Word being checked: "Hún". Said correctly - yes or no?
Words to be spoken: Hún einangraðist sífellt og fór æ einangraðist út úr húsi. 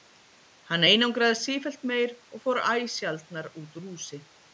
no